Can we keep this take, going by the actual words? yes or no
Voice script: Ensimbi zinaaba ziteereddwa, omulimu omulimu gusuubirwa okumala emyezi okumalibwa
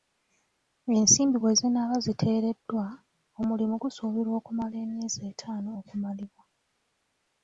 no